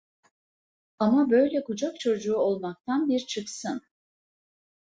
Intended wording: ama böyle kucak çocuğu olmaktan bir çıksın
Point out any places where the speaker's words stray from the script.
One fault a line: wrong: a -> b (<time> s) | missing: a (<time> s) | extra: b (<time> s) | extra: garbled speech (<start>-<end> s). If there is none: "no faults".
no faults